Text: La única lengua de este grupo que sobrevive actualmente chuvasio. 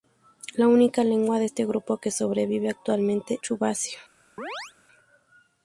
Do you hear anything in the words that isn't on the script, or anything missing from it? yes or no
no